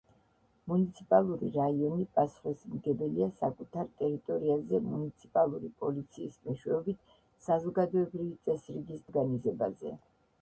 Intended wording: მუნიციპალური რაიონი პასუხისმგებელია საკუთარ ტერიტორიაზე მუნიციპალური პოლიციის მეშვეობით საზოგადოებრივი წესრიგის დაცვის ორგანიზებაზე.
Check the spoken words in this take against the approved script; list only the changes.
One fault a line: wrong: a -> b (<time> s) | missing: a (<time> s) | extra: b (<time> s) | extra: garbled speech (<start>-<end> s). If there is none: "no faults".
missing: დაცვის (9.1 s)